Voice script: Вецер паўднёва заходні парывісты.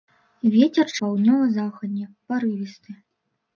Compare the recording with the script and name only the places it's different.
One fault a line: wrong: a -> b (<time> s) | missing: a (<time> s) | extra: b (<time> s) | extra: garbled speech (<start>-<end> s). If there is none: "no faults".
no faults